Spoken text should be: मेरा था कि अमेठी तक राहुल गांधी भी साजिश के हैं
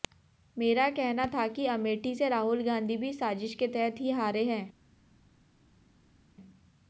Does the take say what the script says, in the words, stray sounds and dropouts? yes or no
no